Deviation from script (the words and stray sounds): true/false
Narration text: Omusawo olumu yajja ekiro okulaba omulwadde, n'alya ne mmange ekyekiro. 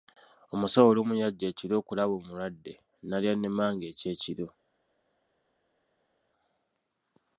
false